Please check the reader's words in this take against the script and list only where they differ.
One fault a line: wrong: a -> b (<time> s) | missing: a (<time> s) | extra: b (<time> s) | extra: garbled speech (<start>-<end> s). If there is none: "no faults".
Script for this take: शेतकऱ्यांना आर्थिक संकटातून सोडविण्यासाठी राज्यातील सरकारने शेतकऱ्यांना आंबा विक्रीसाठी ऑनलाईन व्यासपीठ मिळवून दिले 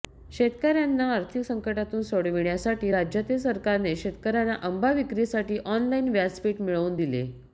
no faults